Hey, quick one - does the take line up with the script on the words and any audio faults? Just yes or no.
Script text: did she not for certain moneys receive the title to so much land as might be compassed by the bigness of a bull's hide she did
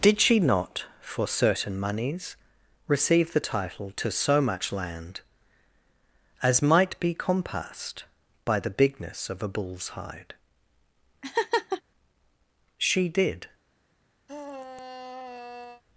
no